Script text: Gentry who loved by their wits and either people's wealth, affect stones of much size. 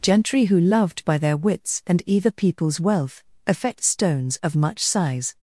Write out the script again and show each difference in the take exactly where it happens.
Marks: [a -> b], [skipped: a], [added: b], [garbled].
Gentry who loved by their wits and either people's wealth, affect stones of much size.